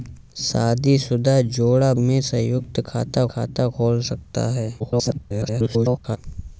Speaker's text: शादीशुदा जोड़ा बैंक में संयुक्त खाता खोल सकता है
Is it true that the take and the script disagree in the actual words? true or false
true